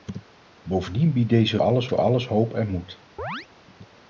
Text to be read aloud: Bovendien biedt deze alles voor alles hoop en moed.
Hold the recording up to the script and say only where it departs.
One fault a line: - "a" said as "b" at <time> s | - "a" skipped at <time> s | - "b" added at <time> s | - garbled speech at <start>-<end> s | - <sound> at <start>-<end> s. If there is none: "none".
- chirp at 3.2-3.5 s